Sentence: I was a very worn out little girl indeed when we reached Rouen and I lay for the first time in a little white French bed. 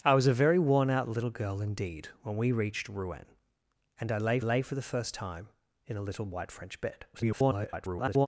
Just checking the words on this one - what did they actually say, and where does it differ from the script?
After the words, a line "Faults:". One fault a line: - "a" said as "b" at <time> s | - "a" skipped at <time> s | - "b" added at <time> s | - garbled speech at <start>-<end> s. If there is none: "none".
I was a very worn out little girl indeed when we reached Rouen and I lay lay for the first time in a little white French bed. [garbled]
Faults:
- "lay" added at 4.4 s
- garbled speech at 7.1-8.3 s